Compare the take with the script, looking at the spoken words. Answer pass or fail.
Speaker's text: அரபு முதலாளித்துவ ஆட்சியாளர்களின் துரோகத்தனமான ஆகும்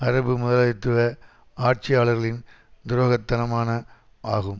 pass